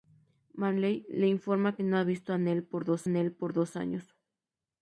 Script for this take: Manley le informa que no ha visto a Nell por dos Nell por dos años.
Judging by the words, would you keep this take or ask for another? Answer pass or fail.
pass